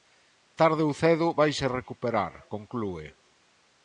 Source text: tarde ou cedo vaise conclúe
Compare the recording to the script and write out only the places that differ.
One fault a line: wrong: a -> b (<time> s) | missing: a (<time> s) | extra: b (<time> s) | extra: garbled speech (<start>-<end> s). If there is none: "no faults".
extra: recuperar (1.8 s)